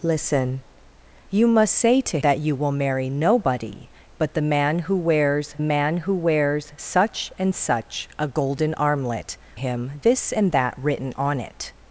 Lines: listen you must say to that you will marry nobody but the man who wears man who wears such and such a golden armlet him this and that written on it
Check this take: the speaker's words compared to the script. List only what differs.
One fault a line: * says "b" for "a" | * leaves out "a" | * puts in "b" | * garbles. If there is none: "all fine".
all fine